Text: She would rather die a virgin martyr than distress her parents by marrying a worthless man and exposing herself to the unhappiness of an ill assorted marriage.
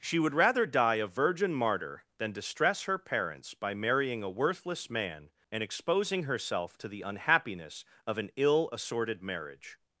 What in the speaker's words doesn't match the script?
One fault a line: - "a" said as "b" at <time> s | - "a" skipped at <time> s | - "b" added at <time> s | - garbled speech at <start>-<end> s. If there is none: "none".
none